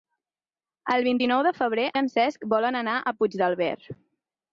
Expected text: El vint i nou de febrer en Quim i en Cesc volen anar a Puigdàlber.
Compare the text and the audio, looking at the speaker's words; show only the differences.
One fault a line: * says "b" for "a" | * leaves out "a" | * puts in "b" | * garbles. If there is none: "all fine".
* leaves out "en Quim"